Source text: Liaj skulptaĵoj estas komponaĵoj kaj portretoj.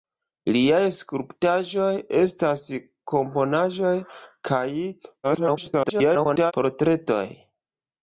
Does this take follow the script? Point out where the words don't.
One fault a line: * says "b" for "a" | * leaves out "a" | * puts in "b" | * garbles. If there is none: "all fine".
* garbles